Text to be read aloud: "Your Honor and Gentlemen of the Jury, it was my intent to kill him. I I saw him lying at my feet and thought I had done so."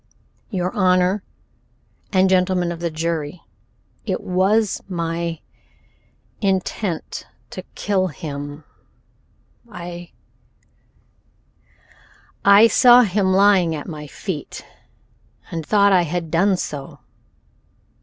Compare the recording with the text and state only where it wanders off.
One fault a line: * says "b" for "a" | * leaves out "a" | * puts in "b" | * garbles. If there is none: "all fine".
all fine